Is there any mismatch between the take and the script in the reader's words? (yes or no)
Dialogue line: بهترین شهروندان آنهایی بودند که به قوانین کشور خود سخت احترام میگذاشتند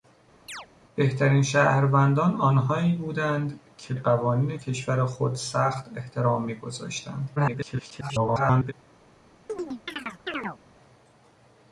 yes